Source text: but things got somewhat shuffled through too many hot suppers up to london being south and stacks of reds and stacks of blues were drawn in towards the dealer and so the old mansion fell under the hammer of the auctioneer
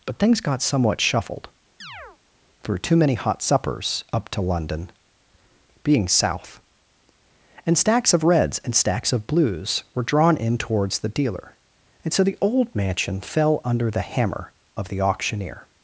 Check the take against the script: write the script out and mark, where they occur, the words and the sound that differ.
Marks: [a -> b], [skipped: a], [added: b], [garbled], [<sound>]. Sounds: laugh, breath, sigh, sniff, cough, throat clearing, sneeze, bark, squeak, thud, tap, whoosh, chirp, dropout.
but things got somewhat shuffled [chirp] through too many hot suppers up to london being south and stacks of reds and stacks of blues were drawn in towards the dealer and so the old mansion fell under the hammer of the auctioneer